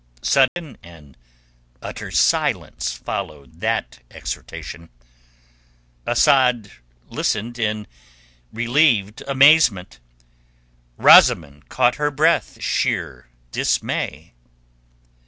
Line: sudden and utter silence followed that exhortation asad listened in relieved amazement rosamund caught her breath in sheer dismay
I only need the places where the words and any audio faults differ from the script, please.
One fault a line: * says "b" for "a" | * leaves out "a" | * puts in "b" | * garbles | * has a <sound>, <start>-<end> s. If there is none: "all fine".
* has a dropout, 0.5-0.6 s
* leaves out "in"